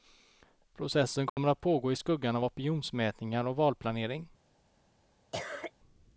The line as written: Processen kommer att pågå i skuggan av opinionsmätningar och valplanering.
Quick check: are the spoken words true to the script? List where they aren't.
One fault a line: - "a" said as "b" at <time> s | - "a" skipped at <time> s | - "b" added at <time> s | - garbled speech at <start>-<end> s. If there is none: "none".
none